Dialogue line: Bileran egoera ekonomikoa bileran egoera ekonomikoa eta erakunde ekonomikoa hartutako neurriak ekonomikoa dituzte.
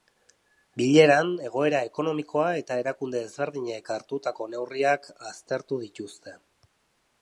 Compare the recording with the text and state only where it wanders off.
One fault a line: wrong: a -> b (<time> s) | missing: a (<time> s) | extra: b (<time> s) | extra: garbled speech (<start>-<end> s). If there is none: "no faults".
missing: bileran egoera ekonomikoa (2.5 s)
wrong: ekonomikoa -> ezberdinek (3.3 s)
wrong: ekonomikoa -> aztertu (5.3 s)